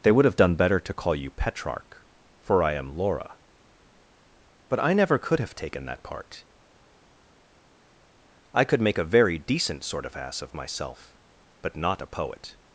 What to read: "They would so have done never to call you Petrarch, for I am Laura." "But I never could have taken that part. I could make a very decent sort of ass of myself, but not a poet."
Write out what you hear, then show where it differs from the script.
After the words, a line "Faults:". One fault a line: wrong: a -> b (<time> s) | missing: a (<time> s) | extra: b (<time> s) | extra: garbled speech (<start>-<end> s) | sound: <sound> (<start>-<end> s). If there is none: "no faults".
"They would have done better to call you Petrarch, for I am Laura." "But I never could have taken that part. I could make a very decent sort of ass of myself, but not a poet."
Faults:
missing: so (0.2 s)
wrong: never -> better (0.6 s)